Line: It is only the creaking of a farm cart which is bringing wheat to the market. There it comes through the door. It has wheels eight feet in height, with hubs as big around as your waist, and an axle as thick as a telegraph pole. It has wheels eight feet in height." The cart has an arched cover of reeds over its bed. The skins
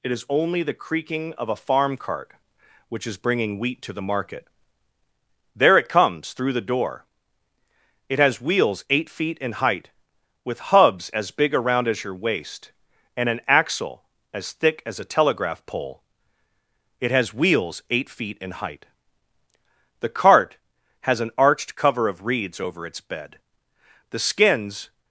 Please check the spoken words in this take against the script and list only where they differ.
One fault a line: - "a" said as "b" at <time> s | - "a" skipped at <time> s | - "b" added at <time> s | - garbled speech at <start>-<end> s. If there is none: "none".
none